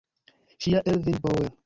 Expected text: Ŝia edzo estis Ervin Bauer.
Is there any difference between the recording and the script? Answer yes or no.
yes